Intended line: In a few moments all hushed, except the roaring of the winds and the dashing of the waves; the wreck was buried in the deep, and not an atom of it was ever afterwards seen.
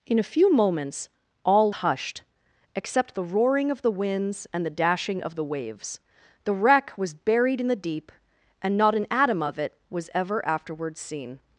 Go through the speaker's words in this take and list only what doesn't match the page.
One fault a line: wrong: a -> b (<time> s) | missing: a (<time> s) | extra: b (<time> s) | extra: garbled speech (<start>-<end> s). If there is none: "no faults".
no faults